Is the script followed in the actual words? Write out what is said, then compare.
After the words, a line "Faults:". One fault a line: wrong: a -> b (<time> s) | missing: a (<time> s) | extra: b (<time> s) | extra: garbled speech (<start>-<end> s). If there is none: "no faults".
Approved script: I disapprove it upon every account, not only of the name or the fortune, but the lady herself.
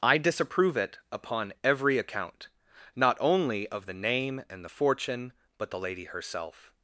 I disapprove it upon every account, not only of the name and the fortune, but the lady herself.
Faults:
wrong: or -> and (4.5 s)